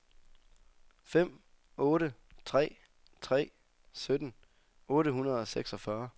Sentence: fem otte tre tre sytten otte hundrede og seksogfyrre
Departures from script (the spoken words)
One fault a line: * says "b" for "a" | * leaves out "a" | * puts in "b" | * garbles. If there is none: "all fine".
all fine